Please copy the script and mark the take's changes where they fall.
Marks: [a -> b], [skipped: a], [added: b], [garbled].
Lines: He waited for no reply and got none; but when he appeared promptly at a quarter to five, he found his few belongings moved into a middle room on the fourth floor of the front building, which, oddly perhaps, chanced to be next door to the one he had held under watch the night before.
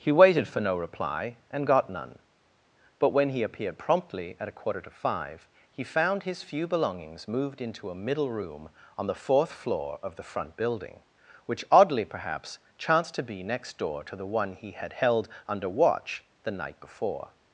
He waited for no reply and got none; but when he appeared promptly at a quarter to five, he found his few belongings moved into a middle room on the fourth floor of the front building, which, oddly perhaps, chanced to be next door to the one he had held under watch the night before.